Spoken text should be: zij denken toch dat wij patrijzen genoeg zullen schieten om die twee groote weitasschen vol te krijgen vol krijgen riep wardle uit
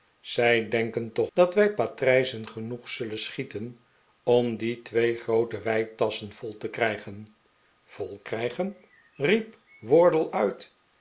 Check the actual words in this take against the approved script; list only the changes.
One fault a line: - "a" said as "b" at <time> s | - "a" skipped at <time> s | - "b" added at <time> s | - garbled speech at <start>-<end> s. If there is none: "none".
none